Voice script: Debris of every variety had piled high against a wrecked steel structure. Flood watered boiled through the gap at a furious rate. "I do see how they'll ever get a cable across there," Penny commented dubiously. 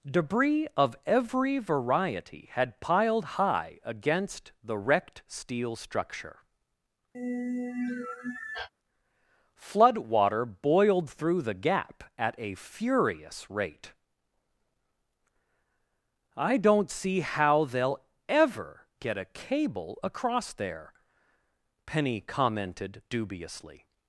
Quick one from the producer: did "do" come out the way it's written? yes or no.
no